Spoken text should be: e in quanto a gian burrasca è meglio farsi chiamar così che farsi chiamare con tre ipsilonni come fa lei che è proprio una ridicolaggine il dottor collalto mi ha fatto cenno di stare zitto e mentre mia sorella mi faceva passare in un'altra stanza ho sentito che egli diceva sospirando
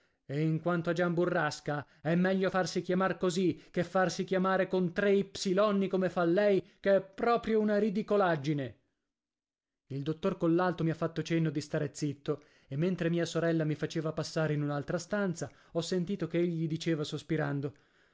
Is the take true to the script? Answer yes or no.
yes